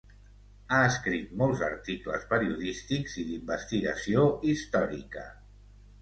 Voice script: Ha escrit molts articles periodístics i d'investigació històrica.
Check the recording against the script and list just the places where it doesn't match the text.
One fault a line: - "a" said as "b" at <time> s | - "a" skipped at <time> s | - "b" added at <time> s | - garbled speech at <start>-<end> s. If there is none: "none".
none